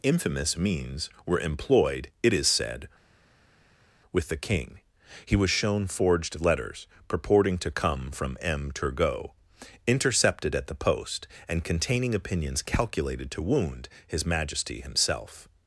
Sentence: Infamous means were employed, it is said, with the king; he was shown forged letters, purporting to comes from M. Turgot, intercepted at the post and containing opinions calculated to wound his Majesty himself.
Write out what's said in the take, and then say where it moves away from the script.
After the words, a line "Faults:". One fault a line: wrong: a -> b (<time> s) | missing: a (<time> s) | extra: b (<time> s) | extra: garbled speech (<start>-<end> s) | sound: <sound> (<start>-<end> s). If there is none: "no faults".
Infamous means were employed, it is said, with the king; he was shown forged letters, purporting to come from M. Turgot, intercepted at the post and containing opinions calculated to wound his Majesty himself.
Faults:
wrong: comes -> come (7.7 s)